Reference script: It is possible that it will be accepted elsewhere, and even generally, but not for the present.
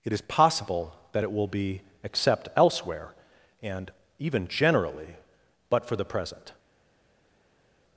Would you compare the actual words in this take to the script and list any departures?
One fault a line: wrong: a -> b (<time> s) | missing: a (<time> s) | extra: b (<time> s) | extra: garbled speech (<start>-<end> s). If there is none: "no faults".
wrong: accepted -> accept (2.0 s)
missing: not (5.9 s)